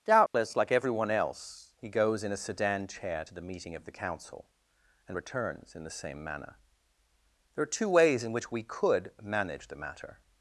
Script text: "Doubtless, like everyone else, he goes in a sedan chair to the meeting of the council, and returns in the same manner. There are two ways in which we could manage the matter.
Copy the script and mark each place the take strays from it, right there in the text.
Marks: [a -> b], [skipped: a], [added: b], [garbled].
"Doubtless, like everyone else, he goes in a sedan chair to the meeting of the council, and returns in the same manner. There are two ways in which we could manage the matter.